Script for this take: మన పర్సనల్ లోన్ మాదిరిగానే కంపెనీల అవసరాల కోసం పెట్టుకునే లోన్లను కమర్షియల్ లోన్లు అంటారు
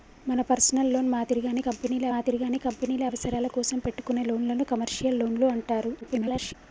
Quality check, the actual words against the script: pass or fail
fail